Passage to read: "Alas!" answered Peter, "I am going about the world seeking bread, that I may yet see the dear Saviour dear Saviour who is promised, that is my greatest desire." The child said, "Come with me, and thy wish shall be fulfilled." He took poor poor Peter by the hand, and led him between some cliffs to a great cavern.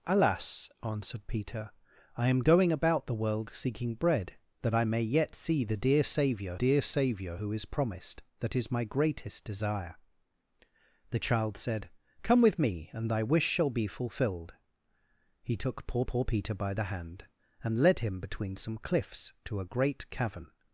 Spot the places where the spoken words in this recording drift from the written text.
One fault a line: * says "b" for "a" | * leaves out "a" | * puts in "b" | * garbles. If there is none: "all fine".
all fine